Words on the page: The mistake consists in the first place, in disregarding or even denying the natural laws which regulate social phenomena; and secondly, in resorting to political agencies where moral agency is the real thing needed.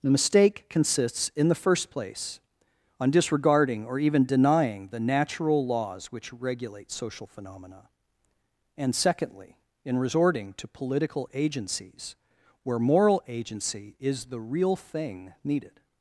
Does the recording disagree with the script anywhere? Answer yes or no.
yes